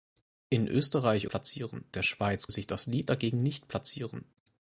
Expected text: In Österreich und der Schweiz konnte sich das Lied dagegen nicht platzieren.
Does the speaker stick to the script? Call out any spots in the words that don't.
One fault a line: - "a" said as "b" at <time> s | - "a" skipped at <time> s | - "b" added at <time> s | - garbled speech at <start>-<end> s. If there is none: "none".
- "und" said as "platzieren" at 1.3 s
- "konnte" skipped at 2.5 s